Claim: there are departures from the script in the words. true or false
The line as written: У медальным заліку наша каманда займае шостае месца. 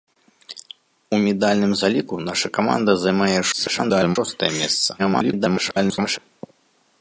true